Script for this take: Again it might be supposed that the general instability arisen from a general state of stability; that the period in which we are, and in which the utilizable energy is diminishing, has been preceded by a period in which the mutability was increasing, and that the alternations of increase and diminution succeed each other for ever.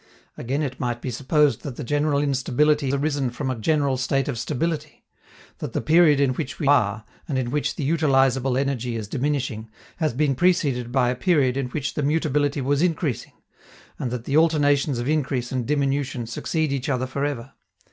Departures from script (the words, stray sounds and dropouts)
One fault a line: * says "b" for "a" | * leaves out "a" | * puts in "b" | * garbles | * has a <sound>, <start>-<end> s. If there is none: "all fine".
all fine